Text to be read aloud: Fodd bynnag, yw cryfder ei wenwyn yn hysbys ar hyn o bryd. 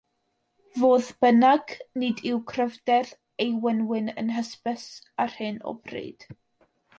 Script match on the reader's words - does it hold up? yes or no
no